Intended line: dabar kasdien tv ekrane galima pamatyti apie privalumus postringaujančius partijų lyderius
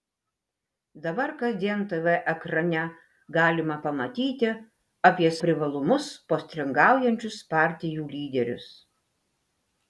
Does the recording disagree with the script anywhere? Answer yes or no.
no